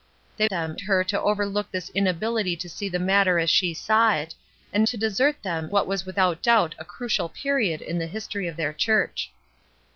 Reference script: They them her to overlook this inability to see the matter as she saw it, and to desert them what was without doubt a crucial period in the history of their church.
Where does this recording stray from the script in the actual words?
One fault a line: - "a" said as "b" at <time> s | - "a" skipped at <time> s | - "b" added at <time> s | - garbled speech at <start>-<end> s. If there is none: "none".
none